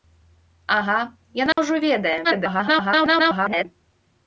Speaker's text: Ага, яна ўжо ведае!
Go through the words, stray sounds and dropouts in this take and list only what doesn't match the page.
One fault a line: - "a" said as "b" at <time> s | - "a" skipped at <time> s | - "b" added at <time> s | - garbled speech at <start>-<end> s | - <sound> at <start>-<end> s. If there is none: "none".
- dropout at 1.5-1.6 s
- garbled speech at 2.2-3.7 s